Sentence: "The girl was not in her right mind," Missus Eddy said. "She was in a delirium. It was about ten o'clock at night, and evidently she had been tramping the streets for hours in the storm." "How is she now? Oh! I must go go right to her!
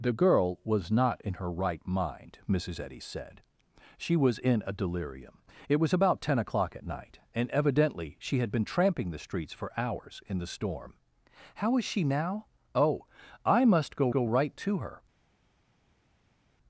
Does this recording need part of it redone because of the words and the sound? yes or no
no